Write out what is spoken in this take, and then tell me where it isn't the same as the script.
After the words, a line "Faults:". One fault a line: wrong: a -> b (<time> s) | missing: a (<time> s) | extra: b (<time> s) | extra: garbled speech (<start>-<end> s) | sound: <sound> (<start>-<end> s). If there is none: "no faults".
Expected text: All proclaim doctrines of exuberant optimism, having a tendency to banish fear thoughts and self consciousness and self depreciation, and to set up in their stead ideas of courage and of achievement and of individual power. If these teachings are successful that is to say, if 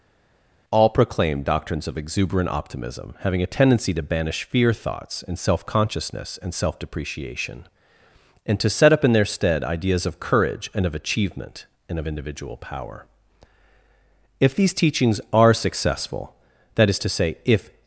All proclaim doctrines of exuberant optimism, having a tendency to banish fear thoughts and self consciousness and self depreciation, and to set up in their stead ideas of courage and of achievement and of individual power. If these teachings are successful that is to say, if
Faults:
no faults